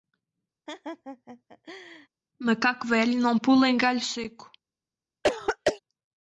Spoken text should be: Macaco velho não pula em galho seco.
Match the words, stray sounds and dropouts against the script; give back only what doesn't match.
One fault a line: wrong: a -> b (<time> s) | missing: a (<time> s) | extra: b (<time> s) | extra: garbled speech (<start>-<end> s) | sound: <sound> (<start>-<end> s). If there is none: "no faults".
sound: laugh (0.7-2.1 s)
sound: throat clearing (5.2-5.8 s)